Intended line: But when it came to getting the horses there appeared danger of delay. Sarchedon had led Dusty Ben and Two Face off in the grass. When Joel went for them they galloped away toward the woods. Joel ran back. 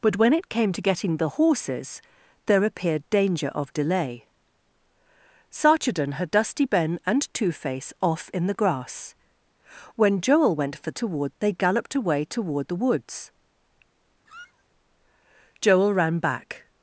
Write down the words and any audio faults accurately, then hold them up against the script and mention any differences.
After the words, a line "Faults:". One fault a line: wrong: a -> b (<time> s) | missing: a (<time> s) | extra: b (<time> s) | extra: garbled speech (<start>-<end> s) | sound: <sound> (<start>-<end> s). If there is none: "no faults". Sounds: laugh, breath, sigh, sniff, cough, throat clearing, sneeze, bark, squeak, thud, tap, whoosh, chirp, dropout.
But when it came to getting the horses there appeared danger of delay. Sarchedon had Dusty Ben and Two Face off in the grass. When Joel went for toward they galloped away toward the woods. Joel ran back.
Faults:
missing: led (6.3 s)
wrong: them -> toward (10.9 s)
sound: squeak (14.3-14.6 s)